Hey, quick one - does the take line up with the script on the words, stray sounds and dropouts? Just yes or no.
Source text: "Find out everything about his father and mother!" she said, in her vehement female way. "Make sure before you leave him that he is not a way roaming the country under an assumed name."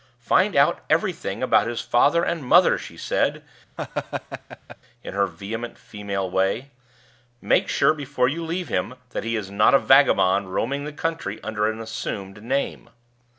no